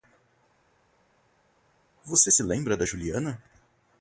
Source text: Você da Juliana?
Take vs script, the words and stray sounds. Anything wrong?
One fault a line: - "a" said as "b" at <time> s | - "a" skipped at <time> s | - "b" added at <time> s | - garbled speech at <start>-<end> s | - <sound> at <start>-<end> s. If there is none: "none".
- "se lembra" added at 2.3 s